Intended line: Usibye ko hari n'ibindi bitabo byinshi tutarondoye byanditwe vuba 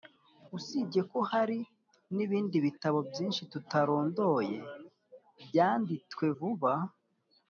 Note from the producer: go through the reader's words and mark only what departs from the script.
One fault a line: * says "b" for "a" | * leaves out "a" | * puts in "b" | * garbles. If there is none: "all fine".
all fine